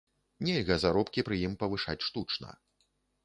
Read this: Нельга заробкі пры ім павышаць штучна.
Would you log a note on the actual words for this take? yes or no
no